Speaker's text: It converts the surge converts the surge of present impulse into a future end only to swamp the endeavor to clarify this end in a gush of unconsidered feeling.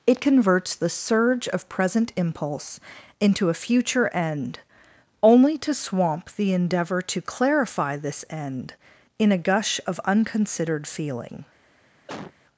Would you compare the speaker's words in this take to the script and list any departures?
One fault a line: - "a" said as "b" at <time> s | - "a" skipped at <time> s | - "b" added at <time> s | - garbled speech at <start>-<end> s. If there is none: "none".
- "converts the surge" skipped at 1.5 s